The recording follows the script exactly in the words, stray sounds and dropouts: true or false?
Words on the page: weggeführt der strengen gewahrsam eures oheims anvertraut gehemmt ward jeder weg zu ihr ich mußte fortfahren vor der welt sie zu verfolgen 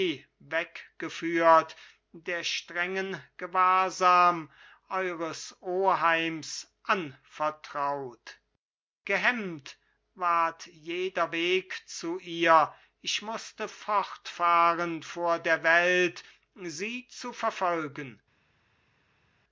true